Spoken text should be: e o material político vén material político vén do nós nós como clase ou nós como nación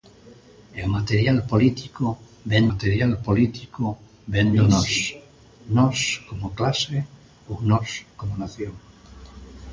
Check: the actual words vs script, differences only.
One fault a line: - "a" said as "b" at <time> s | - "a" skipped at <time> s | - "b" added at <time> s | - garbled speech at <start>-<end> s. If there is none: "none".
none